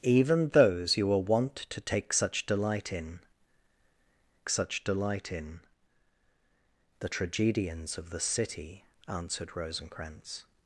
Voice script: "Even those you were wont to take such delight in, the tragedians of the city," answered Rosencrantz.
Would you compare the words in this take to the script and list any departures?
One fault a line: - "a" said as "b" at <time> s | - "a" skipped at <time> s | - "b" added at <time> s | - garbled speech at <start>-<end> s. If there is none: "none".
- "such delight in" added at 4.5 s